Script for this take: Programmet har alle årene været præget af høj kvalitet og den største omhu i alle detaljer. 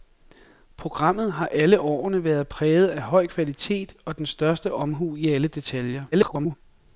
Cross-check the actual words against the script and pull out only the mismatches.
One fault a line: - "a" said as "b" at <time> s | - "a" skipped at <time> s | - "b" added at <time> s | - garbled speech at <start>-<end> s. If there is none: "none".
- garbled speech at 6.1-6.6 s